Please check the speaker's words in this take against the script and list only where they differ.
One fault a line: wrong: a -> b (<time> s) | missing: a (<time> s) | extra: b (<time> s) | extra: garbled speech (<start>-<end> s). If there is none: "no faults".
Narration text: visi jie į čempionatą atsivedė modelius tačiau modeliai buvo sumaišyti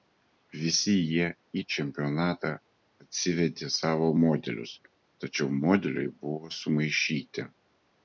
extra: savo (3.8 s)